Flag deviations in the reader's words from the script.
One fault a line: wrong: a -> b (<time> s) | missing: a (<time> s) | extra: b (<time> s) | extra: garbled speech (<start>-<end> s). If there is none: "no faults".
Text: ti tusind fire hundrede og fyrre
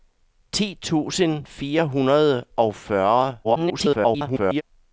extra: garbled speech (3.4-4.6 s)